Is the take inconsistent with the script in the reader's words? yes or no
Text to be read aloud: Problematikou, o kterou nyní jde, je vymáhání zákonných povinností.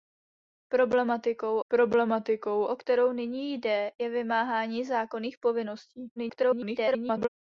yes